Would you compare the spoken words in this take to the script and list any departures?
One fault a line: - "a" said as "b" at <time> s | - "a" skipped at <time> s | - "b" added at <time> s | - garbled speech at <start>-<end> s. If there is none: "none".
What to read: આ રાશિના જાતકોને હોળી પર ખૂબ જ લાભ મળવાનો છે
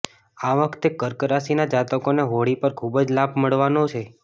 - "વખતે કર્ક" added at 0.6 s